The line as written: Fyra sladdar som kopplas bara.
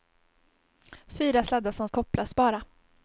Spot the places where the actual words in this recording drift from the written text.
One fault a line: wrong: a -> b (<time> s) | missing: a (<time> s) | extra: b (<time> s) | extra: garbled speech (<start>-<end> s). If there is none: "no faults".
no faults